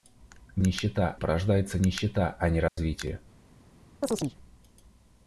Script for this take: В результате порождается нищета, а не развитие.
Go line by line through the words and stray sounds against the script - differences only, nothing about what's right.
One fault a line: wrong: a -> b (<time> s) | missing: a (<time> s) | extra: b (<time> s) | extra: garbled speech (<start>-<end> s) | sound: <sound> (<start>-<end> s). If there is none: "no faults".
wrong: результате -> нищета (0.6 s)
sound: dropout (2.7-2.8 s)
sound: chirp (4.0-4.4 s)